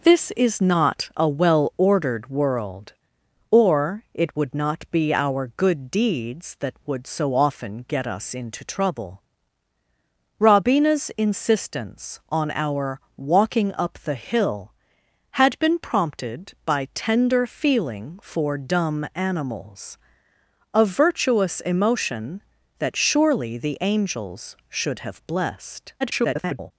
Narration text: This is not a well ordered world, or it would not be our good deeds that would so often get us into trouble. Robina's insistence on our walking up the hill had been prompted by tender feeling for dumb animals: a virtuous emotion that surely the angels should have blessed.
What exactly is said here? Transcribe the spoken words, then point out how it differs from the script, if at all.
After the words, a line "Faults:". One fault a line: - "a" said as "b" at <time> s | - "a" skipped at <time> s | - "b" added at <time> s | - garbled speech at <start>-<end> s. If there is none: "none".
This is not a well ordered world, or it would not be our good deeds that would so often get us into trouble. Robina's insistence on our walking up the hill had been prompted by tender feeling for dumb animals: a virtuous emotion that surely the angels should have blessed. [garbled]
Faults:
- garbled speech at 26.0-26.7 s